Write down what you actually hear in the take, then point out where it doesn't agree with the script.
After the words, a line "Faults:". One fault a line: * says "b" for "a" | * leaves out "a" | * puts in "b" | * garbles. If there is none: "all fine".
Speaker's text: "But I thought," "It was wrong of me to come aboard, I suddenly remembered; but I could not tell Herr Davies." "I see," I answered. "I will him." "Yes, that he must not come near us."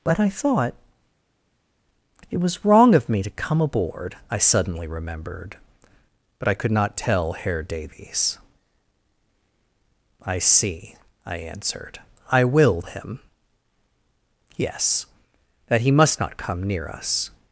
"But I thought," "It was wrong of me to come aboard, I suddenly remembered; but I could not tell Herr Davies." "I see," I answered. "I will him." "Yes, that he must not come near us."
Faults:
all fine